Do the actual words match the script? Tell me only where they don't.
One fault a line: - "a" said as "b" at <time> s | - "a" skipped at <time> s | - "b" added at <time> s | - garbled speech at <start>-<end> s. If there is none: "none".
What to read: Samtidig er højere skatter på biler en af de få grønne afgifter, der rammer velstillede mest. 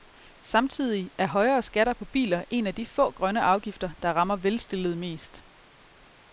none